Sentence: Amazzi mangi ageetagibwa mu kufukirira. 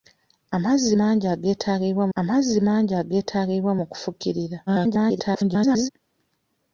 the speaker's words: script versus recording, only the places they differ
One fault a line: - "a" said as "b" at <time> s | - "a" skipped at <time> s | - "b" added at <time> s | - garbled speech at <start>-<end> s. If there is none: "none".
- "amazzi mangi ageetagibwa" added at 2.2 s
- garbled speech at 4.7-5.9 s